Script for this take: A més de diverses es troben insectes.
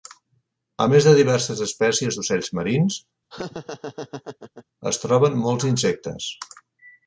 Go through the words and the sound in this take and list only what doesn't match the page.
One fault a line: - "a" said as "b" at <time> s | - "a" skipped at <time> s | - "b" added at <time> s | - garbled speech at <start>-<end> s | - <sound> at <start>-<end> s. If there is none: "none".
- "espècies d'ocells marins" added at 1.6 s
- laugh at 3.3-4.7 s
- "molts" added at 5.5 s